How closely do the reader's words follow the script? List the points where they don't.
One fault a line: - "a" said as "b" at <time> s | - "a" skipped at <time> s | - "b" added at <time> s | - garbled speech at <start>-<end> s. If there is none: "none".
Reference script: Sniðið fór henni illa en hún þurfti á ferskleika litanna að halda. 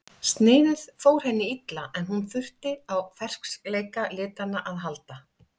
none